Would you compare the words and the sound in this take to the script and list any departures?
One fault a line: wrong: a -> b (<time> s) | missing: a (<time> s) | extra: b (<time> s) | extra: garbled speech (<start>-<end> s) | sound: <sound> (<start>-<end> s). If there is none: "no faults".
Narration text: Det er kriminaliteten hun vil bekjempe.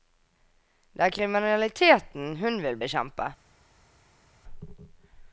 no faults